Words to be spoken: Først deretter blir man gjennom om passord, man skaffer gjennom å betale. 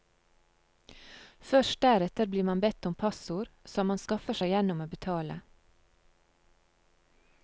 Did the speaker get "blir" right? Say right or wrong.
right